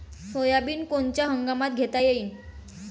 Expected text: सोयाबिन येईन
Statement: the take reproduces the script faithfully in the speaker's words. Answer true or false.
false